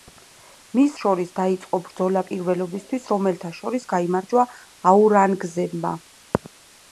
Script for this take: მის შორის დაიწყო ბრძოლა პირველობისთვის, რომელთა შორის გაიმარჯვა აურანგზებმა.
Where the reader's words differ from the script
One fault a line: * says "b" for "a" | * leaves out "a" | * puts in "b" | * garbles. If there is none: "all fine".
all fine